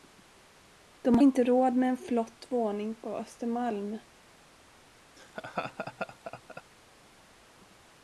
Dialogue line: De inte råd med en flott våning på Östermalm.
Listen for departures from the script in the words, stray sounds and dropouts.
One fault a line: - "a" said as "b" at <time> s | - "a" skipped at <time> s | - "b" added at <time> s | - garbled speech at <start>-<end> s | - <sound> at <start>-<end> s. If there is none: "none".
- laugh at 5.2-6.6 s